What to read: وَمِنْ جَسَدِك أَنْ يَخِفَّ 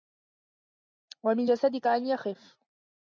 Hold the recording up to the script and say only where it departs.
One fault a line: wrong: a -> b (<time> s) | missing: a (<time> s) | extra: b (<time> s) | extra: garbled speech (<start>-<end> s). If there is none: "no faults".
no faults